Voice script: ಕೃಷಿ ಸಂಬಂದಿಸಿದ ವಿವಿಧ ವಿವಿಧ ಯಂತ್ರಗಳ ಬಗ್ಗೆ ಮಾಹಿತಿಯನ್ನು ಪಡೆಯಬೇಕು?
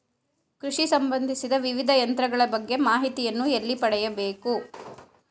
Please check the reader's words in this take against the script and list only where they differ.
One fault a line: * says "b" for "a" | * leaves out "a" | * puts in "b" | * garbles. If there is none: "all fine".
* leaves out "ವಿವಿಧ"
* puts in "ಎಲ್ಲಿ"